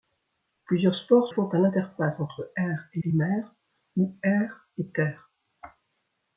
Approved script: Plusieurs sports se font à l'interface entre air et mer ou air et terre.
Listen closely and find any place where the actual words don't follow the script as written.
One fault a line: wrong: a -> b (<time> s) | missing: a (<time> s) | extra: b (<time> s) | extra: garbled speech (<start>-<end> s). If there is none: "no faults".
missing: se (1.3 s)
extra: et (3.0 s)